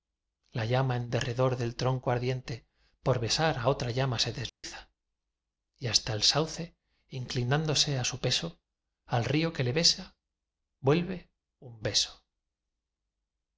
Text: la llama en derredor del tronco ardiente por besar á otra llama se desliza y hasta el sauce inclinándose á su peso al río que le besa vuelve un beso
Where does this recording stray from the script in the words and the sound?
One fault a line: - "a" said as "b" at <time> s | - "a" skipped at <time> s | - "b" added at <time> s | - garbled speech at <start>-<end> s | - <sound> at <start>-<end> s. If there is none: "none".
- dropout at 4.5-4.6 s